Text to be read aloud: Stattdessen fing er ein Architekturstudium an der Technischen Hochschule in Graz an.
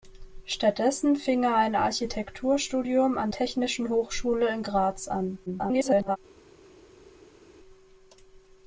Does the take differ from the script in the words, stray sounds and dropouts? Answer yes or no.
yes